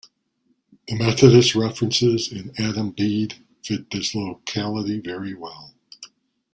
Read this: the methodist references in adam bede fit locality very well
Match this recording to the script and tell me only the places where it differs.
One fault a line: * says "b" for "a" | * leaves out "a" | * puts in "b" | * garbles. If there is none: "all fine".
* puts in "this"